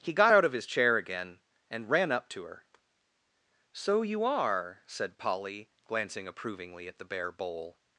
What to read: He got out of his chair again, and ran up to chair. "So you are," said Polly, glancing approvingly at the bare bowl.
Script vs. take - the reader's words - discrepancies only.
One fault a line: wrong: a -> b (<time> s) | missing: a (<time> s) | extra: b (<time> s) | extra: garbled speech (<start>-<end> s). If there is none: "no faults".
wrong: chair -> her (2.4 s)